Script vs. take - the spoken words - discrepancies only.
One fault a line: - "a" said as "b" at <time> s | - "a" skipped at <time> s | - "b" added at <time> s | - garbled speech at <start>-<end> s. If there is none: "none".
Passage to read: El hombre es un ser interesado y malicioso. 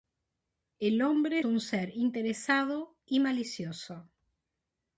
- "es" skipped at 1.4 s